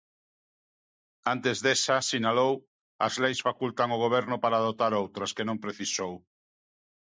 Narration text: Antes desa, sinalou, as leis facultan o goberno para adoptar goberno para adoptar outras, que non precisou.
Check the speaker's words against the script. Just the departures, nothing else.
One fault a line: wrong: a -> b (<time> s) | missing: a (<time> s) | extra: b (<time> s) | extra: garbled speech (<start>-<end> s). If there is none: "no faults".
missing: goberno para adoptar (4.9 s)